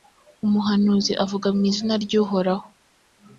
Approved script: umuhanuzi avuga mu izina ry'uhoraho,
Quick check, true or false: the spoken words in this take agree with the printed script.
true